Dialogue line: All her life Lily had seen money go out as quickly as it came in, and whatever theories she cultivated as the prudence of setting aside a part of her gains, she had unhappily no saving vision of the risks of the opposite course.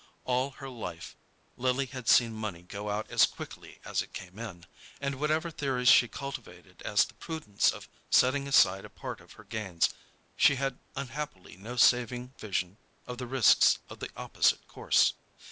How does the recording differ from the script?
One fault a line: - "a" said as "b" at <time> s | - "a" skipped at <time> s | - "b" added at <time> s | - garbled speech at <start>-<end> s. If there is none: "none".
none